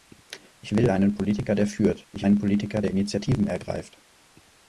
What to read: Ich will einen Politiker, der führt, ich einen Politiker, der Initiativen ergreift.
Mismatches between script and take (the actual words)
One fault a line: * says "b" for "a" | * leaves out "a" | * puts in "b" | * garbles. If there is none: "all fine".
all fine